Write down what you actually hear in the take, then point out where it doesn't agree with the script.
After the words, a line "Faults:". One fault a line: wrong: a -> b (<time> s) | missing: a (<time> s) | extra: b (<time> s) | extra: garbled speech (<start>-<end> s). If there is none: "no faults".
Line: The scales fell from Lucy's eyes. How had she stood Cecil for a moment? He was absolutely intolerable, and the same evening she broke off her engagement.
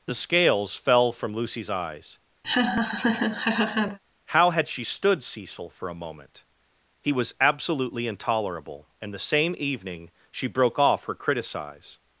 The scales fell from Lucy's eyes. How had she stood Cecil for a moment? He was absolutely intolerable, and the same evening she broke off her criticize.
Faults:
wrong: engagement -> criticize (11.2 s)